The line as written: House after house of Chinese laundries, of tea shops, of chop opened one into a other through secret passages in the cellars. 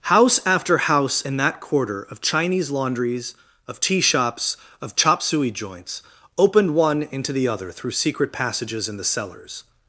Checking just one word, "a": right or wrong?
wrong